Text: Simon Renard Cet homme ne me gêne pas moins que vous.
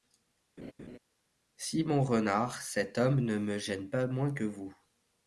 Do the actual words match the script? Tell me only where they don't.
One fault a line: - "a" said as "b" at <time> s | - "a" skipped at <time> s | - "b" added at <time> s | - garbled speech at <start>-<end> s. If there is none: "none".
none